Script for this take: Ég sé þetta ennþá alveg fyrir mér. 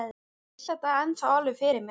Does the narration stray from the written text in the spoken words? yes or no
yes